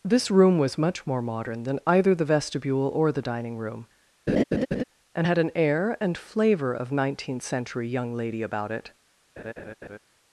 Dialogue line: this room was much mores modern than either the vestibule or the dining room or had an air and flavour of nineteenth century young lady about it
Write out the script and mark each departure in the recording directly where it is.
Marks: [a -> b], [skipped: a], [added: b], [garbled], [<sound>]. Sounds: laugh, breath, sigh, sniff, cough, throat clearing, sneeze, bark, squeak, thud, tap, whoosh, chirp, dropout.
this room was much [mores -> more] modern than either the vestibule or the dining room [laugh] [or -> and] had an air and flavour of nineteenth century young lady about it [laugh]